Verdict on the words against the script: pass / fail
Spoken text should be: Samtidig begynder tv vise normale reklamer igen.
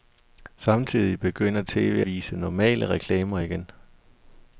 pass